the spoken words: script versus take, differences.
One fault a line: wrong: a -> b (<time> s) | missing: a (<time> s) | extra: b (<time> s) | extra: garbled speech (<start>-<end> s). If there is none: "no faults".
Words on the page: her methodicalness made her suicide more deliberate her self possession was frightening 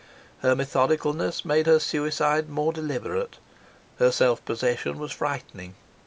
no faults